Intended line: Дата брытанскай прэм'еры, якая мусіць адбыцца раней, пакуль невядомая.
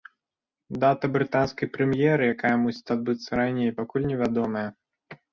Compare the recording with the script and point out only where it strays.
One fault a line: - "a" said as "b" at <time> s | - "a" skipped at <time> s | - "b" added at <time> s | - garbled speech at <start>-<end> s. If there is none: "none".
none